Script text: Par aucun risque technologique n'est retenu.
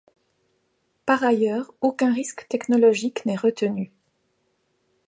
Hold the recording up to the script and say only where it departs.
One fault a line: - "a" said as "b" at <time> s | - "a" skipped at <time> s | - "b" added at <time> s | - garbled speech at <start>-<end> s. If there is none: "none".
- "ailleurs" added at 1.2 s